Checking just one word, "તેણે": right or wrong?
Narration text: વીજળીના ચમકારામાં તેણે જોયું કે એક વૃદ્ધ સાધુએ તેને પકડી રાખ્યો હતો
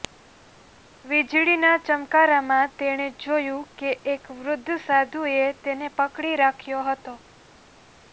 right